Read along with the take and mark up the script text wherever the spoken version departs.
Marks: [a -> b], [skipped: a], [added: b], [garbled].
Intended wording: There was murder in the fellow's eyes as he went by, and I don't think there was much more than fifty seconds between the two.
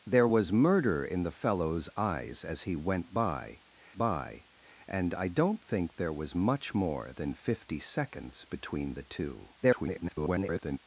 There was murder in the fellow's eyes as he went by, [added: by] and I don't think there was much more than fifty seconds between the two. [garbled]